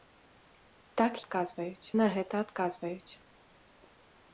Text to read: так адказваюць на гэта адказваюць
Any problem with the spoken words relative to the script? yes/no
no